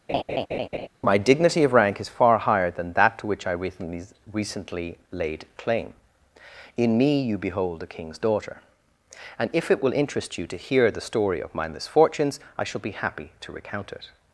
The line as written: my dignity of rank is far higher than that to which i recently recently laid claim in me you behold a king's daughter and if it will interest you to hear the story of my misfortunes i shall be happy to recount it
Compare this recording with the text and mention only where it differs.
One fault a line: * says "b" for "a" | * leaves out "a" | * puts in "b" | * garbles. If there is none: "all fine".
all fine